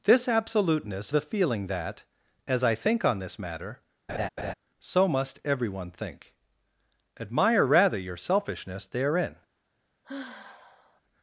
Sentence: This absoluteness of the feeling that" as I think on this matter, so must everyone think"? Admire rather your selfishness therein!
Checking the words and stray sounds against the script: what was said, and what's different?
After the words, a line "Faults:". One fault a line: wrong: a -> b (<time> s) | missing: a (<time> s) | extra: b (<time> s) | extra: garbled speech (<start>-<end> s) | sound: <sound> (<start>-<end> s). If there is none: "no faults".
This absoluteness the feeling that" as I think on this matter, so must everyone think"? Admire rather your selfishness therein!
Faults:
missing: of (1.1 s)
sound: laugh (4.1-4.5 s)
sound: sigh (10.0-11.0 s)